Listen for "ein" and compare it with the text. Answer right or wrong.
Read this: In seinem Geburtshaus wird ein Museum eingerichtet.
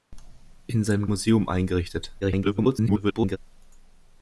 wrong